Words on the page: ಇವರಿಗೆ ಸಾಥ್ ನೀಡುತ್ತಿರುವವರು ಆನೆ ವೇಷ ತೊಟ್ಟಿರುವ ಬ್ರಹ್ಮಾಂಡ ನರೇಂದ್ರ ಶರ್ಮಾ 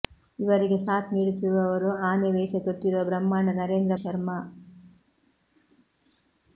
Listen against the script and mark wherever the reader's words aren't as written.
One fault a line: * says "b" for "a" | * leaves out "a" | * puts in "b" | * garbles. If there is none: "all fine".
all fine